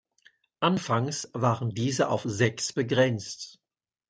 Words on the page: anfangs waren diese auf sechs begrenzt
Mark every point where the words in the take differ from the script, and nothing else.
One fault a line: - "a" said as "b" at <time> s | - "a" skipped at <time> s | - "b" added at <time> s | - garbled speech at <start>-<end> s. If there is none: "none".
none